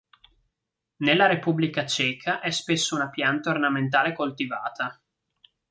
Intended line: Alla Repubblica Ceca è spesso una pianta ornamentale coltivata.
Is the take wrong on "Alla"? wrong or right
wrong